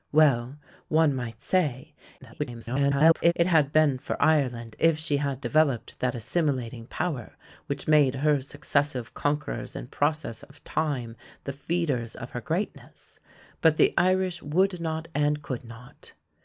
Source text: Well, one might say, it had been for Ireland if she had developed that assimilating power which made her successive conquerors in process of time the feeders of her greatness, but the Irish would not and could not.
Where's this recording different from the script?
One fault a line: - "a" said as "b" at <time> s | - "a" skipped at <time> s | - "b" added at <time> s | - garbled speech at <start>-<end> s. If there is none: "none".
- garbled speech at 2.2-3.3 s